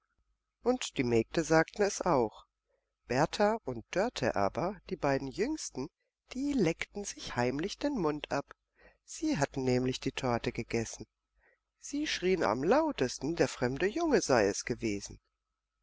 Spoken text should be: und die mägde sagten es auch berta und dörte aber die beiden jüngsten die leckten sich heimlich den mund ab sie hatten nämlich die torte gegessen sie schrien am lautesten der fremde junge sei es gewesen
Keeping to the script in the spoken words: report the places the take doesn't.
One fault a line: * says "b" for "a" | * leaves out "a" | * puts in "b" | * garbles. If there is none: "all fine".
all fine